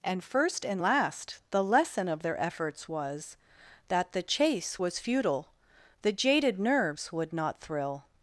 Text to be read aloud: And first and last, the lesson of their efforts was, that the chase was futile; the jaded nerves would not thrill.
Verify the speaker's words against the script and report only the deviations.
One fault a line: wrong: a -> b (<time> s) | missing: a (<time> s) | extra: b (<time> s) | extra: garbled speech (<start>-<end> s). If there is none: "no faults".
no faults